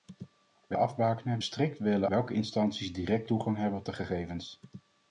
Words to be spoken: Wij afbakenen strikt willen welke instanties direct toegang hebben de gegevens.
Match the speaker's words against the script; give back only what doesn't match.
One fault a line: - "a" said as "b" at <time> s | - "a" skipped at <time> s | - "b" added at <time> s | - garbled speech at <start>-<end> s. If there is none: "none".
none